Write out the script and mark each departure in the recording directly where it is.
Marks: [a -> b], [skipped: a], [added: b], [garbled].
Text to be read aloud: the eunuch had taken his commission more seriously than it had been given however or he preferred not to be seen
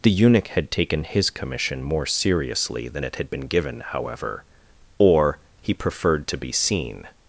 the eunuch had taken his commission more seriously than it had been given however or he preferred [skipped: not] to be seen